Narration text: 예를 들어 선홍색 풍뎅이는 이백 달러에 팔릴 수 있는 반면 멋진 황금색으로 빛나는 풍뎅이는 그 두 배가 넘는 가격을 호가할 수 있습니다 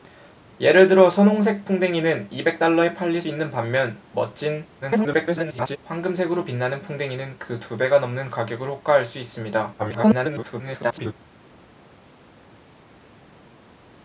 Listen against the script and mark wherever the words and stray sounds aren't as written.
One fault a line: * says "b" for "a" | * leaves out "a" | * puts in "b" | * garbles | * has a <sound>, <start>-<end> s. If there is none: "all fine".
* leaves out "수"
* garbles
* garbles